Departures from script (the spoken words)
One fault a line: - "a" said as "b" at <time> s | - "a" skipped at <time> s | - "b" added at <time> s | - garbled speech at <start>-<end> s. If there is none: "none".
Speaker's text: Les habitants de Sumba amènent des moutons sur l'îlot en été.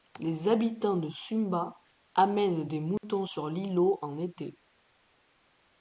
none